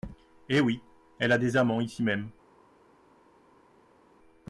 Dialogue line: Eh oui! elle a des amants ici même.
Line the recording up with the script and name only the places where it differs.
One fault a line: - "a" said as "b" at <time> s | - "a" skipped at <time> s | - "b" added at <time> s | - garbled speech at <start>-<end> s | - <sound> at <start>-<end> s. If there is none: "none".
none